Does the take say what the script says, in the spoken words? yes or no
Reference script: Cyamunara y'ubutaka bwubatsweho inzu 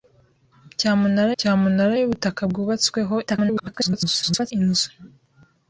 no